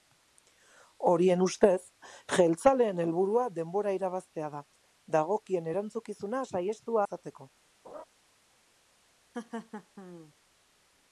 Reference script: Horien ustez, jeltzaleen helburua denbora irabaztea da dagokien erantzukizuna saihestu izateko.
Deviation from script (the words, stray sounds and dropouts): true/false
true